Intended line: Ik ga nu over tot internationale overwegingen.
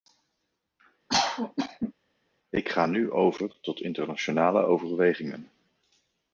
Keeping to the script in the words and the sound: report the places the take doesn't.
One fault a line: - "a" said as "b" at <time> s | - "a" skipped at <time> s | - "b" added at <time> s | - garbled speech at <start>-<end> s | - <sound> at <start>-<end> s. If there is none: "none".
- cough at 1.1-1.9 s